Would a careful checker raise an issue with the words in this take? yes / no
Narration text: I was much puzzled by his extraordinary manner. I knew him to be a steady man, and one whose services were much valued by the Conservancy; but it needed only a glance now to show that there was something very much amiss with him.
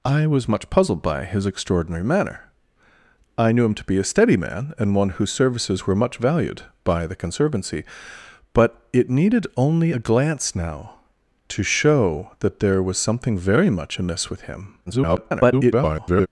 yes